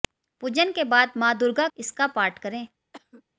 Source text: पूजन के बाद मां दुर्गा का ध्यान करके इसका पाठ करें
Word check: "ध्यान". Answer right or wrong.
wrong